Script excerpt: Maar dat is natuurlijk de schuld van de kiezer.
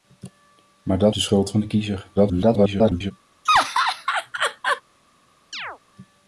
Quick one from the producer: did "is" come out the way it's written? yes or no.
no